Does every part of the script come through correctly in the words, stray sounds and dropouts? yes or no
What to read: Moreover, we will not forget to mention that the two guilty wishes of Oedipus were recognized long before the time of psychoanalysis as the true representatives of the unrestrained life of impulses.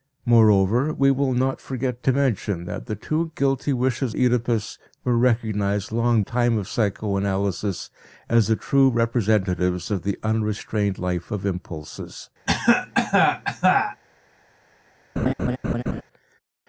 no